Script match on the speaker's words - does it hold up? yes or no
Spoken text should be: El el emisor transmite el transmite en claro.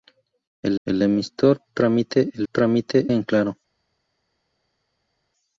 yes